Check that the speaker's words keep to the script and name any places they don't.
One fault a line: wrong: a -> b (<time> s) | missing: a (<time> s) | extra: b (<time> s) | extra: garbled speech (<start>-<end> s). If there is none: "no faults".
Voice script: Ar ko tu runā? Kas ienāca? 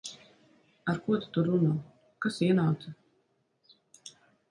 extra: tur (1.4 s)